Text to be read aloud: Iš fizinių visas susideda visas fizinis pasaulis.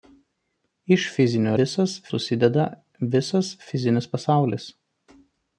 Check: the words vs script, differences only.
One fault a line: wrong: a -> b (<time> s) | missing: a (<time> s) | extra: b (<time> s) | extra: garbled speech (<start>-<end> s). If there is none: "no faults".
no faults